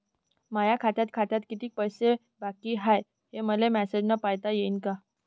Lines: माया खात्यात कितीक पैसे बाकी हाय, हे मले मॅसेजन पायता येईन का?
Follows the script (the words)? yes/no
no